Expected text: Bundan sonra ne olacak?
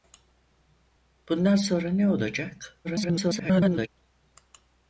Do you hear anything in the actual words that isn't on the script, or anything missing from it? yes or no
yes